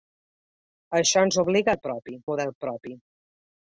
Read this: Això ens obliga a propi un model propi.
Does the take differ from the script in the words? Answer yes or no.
no